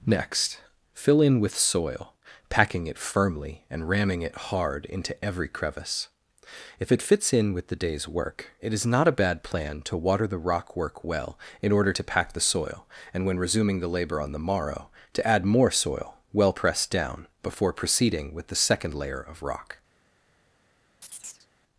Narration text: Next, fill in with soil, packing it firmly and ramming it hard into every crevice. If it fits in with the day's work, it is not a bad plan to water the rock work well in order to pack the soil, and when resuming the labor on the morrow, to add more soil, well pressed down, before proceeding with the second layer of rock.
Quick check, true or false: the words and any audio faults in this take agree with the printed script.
false